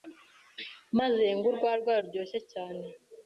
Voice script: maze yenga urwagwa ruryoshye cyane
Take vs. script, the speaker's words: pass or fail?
pass